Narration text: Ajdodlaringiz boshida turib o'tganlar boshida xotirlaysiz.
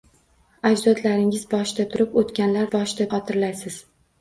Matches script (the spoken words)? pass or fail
pass